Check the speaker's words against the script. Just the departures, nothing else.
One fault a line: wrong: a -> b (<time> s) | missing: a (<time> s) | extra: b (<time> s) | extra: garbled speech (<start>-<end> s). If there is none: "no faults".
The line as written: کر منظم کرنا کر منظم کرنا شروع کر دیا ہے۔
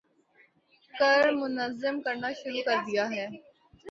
missing: کر منظم کرنا (2.3 s)